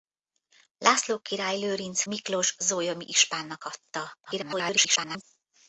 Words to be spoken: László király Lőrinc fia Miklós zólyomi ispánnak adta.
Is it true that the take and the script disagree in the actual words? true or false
true